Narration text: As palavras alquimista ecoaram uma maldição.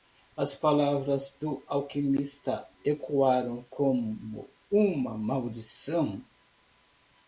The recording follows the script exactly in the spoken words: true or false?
false